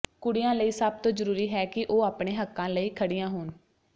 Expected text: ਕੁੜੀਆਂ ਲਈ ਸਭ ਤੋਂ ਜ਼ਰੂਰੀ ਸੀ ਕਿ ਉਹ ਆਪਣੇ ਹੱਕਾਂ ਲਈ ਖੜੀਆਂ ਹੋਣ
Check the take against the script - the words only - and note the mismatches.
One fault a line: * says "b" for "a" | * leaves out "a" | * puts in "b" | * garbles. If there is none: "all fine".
* says "ਹੈ" for "ਸੀ"